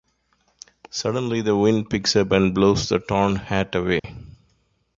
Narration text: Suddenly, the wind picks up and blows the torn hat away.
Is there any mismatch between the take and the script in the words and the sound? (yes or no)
yes